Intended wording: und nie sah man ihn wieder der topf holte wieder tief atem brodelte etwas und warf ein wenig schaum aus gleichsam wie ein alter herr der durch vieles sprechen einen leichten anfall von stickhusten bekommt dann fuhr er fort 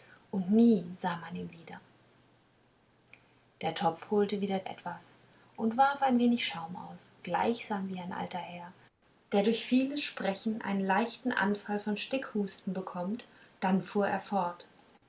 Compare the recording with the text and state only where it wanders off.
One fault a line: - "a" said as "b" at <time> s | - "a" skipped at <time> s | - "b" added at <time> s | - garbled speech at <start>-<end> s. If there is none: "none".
- "tief atem brodelte" skipped at 4.6 s